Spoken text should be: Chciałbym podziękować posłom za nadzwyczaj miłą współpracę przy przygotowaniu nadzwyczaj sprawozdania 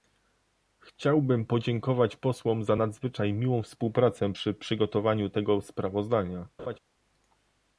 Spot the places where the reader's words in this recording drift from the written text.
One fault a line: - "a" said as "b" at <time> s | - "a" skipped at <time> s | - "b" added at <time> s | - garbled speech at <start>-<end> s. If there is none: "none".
- "nadzwyczaj" said as "tego" at 5.3 s